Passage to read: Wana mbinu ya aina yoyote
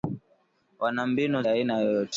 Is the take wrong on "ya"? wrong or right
right